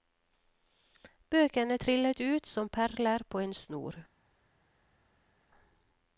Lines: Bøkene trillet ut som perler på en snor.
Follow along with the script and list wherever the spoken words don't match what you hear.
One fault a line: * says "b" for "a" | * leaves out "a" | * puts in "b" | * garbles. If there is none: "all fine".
all fine